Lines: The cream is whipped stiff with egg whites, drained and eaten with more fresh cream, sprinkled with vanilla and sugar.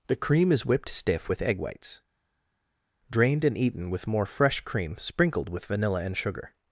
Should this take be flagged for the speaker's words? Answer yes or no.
no